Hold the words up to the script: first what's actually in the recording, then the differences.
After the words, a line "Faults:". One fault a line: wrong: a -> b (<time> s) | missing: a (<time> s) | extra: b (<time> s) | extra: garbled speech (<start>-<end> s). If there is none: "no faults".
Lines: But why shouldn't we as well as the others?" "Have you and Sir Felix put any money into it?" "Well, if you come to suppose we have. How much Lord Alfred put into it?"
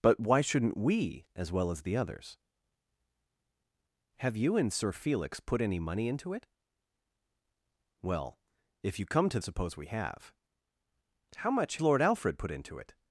But why shouldn't we as well as the others?" "Have you and Sir Felix put any money into it?" "Well, if you come to suppose we have. How much Lord Alfred put into it?"
Faults:
no faults